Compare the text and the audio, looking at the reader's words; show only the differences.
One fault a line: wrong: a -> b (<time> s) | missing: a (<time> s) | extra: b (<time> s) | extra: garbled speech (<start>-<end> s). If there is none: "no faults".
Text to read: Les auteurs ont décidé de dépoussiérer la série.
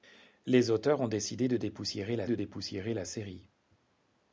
extra: de dépoussiérer la (2.2 s)